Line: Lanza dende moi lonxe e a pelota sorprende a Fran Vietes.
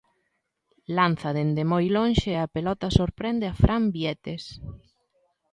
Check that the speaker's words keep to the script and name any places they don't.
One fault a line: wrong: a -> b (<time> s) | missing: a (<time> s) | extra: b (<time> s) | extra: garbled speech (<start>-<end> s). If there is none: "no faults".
no faults